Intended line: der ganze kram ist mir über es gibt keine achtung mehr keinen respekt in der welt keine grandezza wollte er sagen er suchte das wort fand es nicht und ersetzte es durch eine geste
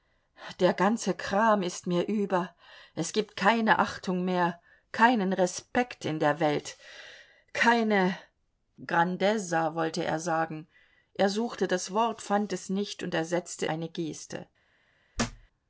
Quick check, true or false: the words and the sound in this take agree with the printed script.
false